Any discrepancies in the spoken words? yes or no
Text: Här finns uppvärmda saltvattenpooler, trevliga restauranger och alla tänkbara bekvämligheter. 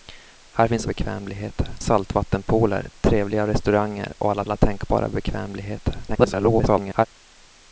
yes